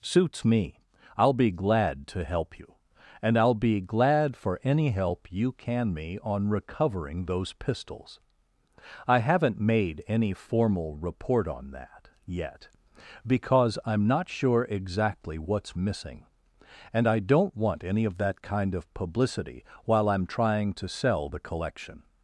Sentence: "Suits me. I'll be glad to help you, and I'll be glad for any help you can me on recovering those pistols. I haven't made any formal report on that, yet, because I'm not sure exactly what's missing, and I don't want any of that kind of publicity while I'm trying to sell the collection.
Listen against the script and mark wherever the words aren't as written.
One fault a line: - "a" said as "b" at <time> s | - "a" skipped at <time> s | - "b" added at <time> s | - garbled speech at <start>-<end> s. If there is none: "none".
none